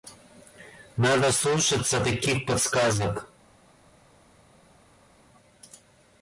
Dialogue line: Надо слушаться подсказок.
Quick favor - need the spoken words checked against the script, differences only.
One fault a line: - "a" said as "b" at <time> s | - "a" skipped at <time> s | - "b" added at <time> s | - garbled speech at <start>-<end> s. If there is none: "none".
- "таких" added at 2.0 s